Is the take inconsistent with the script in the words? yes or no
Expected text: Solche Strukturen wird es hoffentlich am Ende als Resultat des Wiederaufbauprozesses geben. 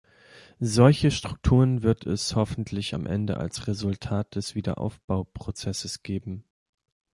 no